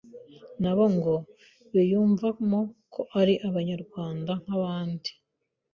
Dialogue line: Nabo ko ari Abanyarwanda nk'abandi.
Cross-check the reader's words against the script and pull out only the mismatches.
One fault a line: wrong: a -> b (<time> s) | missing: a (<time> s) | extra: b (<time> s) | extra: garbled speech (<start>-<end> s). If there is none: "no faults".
extra: ngo biyumvamo (0.9 s)